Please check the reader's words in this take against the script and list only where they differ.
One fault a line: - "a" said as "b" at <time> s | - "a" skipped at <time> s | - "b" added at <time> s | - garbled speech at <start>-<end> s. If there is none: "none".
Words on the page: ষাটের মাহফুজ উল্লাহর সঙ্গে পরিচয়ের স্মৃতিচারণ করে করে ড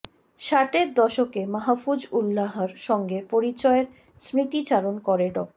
- "দশকে" added at 0.9 s
- "করে" skipped at 5.3 s